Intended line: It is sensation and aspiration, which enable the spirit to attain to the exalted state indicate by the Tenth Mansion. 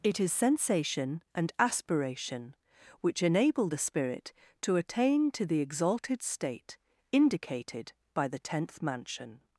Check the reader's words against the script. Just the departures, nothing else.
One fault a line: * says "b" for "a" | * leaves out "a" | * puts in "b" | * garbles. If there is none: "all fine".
* says "indicated" for "indicate"